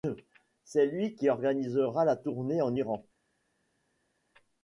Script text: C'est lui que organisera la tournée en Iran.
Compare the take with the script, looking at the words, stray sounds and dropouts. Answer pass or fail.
fail